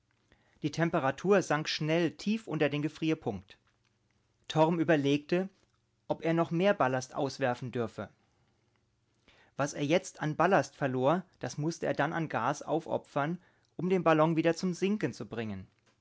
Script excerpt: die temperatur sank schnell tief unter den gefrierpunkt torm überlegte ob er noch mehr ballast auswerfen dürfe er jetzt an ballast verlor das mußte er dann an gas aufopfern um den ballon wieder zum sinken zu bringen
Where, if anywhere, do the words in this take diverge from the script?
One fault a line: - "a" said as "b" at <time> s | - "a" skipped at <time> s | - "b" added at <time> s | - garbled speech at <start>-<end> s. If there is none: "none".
- "was" added at 9.6 s